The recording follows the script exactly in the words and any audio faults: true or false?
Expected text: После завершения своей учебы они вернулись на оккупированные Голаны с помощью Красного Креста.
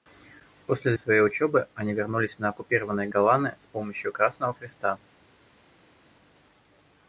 false